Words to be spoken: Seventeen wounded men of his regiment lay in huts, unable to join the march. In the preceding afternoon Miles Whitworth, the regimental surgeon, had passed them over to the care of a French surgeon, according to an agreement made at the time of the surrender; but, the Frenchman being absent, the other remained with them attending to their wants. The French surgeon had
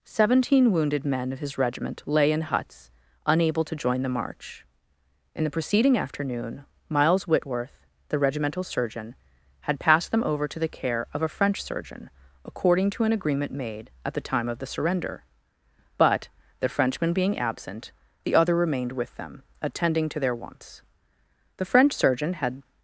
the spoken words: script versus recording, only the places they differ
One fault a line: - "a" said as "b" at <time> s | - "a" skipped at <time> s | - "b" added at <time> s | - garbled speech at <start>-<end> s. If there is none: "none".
none